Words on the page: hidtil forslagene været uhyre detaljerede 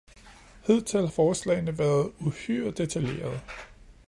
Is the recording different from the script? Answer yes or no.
no